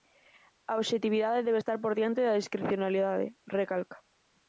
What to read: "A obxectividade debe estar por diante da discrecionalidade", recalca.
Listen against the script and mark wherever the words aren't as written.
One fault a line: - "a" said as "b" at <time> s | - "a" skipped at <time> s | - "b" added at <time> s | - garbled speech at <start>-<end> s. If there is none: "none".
none